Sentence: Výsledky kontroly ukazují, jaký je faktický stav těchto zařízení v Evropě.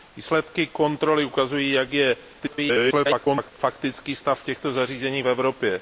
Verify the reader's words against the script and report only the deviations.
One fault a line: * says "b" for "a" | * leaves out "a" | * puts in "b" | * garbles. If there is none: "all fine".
* garbles